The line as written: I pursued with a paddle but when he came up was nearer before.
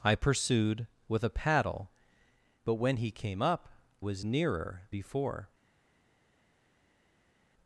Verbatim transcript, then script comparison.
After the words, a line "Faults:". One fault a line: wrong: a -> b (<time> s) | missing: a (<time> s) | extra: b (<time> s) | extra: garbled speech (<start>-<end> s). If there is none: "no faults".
I pursued with a paddle but when he came up was nearer before.
Faults:
no faults